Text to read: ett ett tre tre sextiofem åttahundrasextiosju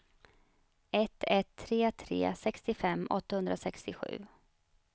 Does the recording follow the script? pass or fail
pass